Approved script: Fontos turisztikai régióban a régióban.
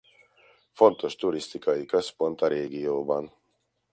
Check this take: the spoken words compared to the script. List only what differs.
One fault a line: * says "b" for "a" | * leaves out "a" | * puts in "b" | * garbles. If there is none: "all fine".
* says "központ" for "régióban"